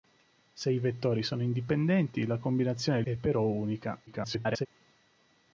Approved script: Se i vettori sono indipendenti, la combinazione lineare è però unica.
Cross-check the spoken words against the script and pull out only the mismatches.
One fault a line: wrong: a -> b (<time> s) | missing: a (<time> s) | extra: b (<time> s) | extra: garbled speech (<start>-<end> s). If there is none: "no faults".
missing: lineare (3.0 s)
extra: garbled speech (4.1-4.7 s)